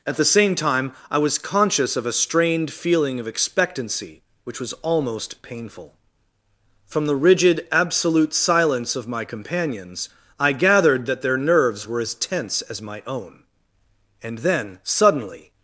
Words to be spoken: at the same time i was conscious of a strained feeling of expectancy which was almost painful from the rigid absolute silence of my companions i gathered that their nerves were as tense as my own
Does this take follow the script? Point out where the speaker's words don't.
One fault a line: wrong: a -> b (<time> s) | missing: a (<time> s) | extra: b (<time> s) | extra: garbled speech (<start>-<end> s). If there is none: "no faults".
extra: and then suddenly (14.2 s)